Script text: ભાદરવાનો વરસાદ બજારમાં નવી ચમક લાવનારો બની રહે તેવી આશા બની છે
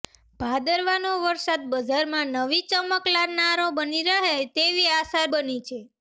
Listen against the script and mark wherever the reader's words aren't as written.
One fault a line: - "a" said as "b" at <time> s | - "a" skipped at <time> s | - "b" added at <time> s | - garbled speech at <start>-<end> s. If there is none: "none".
none